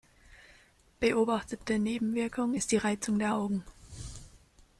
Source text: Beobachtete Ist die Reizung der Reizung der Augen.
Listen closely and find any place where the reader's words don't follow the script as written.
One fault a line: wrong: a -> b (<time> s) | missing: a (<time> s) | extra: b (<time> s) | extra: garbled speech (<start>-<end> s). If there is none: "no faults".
extra: Nebenwirkung (1.8 s)
missing: Reizung der (3.3 s)